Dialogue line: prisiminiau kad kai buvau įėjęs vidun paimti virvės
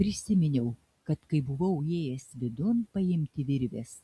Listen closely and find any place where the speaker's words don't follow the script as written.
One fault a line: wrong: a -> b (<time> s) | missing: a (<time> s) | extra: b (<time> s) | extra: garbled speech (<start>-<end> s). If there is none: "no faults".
no faults